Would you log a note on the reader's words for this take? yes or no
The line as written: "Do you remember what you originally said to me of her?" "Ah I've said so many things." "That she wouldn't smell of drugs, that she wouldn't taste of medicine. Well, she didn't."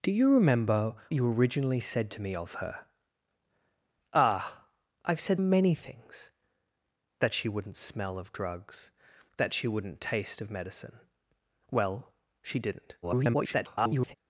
yes